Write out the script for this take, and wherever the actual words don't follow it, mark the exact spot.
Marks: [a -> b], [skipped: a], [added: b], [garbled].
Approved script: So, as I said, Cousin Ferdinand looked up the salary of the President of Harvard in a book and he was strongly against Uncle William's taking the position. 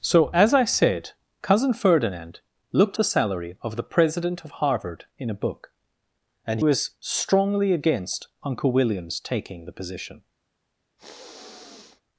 So, as I said, Cousin Ferdinand looked [skipped: up] the salary of the President of Harvard in a book and [skipped: he] was strongly against Uncle William's taking the position.